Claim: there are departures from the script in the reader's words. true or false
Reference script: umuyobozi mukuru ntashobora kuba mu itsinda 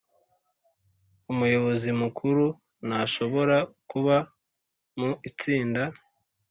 false